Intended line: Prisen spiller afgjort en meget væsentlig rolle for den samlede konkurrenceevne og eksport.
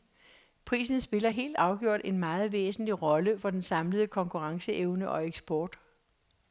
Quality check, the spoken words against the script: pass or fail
fail